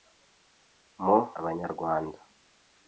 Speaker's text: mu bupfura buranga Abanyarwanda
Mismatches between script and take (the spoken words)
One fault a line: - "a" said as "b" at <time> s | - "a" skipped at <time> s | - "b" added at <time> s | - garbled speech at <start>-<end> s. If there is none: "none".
- "bupfura buranga" skipped at 1.2 s